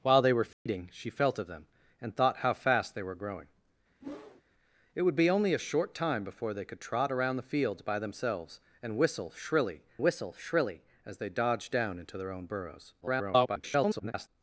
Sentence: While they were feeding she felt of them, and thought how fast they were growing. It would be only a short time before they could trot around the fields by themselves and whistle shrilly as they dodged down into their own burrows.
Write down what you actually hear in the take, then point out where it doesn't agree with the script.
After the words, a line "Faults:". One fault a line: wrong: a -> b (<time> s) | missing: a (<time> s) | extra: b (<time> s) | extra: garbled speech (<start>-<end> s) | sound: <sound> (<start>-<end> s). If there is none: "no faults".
While they were feeding she felt of them, and thought how fast they were growing. It would be only a short time before they could trot around the fields by themselves and whistle shrilly whistle shrilly as they dodged down into their own burrows. [garbled]
Faults:
sound: dropout (0.5-0.7 s)
sound: whoosh (4.0-4.4 s)
extra: whistle shrilly (10.0 s)
extra: garbled speech (13.0-14.3 s)